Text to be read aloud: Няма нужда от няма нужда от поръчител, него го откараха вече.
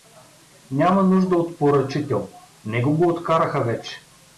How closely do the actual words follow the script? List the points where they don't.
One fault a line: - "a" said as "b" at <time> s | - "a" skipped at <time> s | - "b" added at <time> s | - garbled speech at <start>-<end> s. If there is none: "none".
- "няма нужда от" skipped at 1.6 s